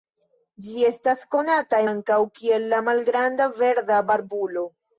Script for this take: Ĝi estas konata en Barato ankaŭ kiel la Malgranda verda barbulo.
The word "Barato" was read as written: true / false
false